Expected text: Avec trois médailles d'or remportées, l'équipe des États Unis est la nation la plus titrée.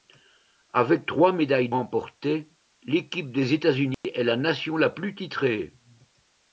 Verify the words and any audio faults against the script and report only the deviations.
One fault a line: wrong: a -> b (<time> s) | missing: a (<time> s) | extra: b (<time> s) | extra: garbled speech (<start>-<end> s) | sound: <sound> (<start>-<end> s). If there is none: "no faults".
missing: d'or (1.7 s)
sound: dropout (3.9-4.0 s)